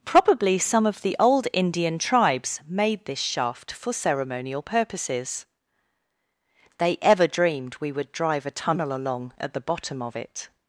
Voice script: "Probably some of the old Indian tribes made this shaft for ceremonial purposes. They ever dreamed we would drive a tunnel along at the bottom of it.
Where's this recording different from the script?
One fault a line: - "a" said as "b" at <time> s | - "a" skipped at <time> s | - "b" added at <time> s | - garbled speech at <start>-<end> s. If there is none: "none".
none